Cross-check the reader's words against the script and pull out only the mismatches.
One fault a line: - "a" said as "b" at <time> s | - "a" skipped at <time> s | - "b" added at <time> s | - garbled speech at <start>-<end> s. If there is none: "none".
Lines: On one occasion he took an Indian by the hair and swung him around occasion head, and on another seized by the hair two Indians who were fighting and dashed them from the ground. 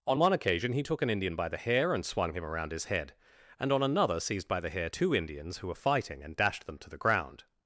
- "occasion" said as "his" at 2.7 s
- "from" said as "to" at 6.8 s